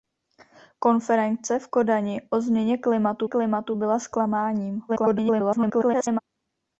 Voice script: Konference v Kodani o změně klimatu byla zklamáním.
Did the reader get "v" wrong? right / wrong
right